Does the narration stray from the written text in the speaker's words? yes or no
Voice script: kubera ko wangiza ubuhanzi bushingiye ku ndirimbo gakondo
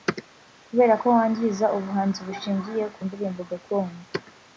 no